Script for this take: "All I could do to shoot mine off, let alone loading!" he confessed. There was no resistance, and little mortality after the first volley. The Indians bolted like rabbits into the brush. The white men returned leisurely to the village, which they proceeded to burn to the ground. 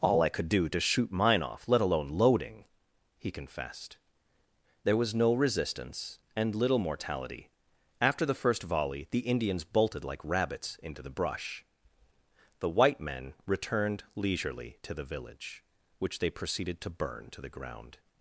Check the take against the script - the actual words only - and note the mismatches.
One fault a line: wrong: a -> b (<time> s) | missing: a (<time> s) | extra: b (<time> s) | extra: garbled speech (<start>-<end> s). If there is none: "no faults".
no faults